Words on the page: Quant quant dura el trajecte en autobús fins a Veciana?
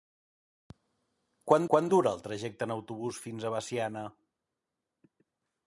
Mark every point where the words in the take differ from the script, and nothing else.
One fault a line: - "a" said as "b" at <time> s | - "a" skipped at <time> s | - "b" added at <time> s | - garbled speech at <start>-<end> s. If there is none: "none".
none